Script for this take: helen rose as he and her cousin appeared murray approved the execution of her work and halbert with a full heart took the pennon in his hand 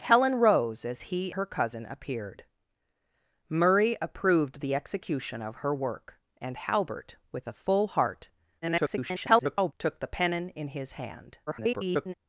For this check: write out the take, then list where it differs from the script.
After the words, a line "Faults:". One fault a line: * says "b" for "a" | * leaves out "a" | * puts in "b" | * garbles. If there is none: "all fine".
helen rose as he her cousin appeared murray approved the execution of her work and halbert with a full heart [garbled] took the pennon in his hand [garbled]
Faults:
* leaves out "and"
* garbles
* garbles